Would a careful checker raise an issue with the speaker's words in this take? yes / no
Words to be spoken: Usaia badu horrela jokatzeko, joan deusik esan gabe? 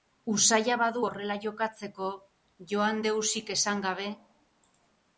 no